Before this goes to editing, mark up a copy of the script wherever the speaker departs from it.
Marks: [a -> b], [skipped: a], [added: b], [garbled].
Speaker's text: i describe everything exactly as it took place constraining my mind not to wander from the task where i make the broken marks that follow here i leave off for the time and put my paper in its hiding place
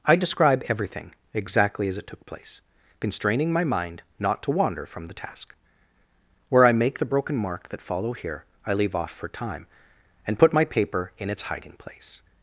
i describe everything exactly as it took place constraining my mind not to wander from the task where i make the broken [marks -> mark] that follow here i leave off for [skipped: the] time and put my paper in its hiding place